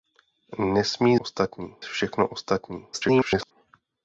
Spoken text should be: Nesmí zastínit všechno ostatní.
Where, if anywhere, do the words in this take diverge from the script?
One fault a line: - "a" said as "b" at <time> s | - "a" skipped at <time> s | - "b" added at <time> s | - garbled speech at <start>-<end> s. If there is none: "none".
- "zastínit" said as "ostatní" at 1.2 s
- garbled speech at 2.9-3.5 s